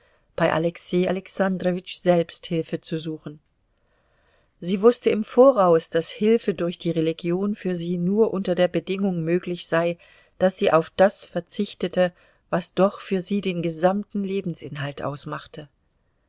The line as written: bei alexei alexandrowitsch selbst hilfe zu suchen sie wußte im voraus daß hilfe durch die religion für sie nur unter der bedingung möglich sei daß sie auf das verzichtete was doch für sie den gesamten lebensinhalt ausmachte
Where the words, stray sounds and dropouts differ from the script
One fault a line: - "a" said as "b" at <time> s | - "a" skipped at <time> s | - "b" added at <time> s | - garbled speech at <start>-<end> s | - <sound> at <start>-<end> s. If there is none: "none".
none